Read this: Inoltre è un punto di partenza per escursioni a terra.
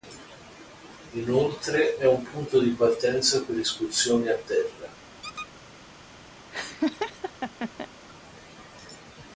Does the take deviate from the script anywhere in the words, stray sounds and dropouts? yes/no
yes